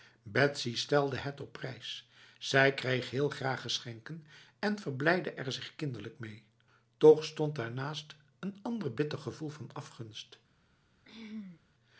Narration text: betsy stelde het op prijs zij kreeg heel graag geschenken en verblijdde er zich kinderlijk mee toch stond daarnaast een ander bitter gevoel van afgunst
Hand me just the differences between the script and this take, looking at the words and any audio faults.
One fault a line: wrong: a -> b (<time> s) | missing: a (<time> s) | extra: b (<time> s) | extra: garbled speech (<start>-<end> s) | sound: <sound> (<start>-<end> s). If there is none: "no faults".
sound: throat clearing (11.1-11.6 s)